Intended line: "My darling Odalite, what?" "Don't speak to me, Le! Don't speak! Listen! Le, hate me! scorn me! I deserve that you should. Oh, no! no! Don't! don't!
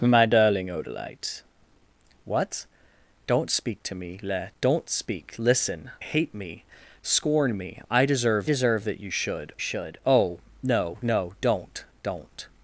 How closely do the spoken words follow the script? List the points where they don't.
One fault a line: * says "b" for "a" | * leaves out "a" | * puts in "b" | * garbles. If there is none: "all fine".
* leaves out "Le"
* puts in "deserve"
* puts in "should"